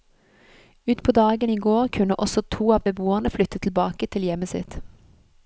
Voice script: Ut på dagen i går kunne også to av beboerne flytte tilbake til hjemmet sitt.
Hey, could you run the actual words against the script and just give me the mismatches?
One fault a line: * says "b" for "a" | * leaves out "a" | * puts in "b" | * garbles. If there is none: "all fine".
all fine